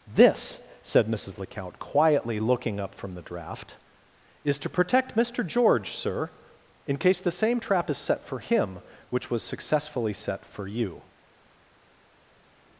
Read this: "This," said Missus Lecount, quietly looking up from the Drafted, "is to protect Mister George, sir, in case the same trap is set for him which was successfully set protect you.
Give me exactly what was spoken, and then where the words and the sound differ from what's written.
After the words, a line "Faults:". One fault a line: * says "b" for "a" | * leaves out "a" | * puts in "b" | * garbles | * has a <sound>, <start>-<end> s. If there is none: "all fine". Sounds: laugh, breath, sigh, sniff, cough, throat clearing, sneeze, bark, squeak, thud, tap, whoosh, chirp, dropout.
"This," said Missus Lecount, quietly looking up from the Draft, "is to protect Mister George, sir, in case the same trap is set for him which was successfully set for you.
Faults:
* says "Draft" for "Drafted"
* says "for" for "protect"